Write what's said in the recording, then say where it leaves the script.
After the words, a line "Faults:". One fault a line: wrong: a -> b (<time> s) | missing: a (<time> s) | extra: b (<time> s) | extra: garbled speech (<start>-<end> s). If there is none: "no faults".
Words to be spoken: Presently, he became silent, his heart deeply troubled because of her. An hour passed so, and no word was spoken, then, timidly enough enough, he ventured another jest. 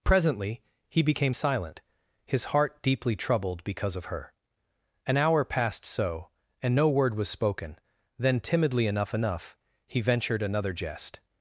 Presently, he became silent, his heart deeply troubled because of her. An hour passed so, and no word was spoken, then, timidly enough enough, he ventured another jest.
Faults:
no faults